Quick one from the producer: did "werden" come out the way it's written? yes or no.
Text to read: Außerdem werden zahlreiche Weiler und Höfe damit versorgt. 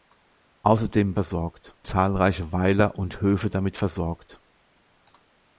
no